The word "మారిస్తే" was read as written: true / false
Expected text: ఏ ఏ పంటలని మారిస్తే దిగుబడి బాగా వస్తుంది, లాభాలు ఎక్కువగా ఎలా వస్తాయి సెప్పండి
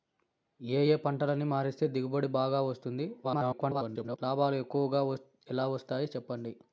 true